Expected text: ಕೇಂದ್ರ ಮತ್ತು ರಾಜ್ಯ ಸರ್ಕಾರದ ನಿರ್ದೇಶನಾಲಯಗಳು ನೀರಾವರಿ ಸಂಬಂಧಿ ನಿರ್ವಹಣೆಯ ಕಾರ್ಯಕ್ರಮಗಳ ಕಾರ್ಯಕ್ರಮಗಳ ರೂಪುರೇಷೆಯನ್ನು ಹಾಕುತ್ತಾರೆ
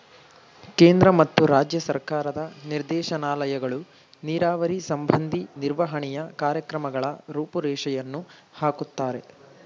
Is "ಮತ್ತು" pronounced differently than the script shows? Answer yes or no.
no